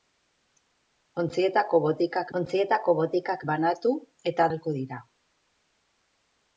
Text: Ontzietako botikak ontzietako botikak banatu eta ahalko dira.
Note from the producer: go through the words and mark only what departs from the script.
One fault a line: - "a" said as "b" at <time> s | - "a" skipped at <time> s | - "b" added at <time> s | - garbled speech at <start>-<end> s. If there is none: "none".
none